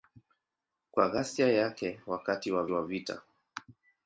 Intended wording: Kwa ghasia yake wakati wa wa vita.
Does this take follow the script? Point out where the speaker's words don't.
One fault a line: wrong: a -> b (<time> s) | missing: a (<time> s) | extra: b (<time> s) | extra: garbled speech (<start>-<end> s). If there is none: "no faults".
no faults